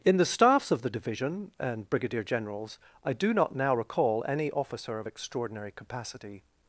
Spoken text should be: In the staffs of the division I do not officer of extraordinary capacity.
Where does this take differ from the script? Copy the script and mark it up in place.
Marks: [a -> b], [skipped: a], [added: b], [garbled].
In the staffs of the division [added: and brigadier generals] I do not [added: now recall any] officer of extraordinary capacity.